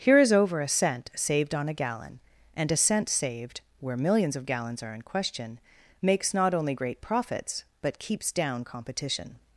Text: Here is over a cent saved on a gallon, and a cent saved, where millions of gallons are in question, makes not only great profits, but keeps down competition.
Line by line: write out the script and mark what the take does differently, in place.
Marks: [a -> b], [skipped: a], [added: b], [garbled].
Here is over a cent saved on a gallon, and a cent saved, where millions of gallons are in question, makes not only great profits, but keeps down competition.